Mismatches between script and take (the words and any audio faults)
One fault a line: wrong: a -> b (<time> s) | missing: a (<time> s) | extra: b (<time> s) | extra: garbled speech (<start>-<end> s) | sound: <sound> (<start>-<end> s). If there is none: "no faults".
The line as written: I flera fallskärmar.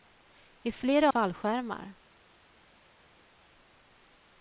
no faults